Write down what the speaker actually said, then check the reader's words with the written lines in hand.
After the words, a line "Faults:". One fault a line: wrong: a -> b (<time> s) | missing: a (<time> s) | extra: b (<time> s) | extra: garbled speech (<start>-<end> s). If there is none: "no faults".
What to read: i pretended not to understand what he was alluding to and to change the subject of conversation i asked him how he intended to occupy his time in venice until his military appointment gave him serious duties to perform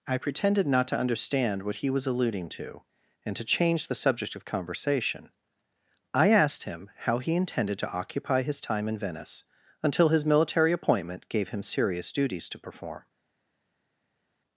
i pretended not to understand what he was alluding to and to change the subject of conversation i asked him how he intended to occupy his time in venice until his military appointment gave him serious duties to perform
Faults:
no faults